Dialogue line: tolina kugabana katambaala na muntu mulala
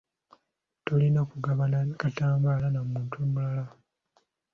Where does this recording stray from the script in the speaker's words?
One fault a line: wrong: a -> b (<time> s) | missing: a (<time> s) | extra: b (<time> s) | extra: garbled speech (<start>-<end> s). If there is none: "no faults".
no faults